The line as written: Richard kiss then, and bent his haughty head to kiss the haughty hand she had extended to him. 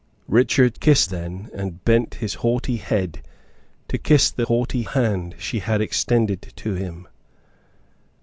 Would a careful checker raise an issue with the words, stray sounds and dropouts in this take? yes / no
no